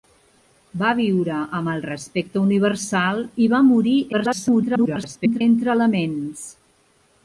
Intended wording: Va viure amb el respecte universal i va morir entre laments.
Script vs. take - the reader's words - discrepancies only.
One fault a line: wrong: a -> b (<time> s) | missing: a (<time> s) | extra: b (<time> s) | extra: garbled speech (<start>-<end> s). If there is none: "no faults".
extra: garbled speech (4.1-5.4 s)